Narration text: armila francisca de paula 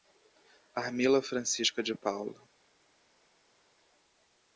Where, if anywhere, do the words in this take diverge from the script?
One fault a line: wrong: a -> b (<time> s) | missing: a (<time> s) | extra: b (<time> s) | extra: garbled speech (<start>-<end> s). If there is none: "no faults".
no faults